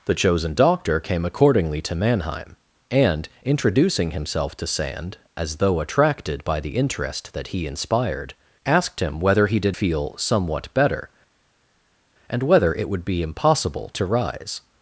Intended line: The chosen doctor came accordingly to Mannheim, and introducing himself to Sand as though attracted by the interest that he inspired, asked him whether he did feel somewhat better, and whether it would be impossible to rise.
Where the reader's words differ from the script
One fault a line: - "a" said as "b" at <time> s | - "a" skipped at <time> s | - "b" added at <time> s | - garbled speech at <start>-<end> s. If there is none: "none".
none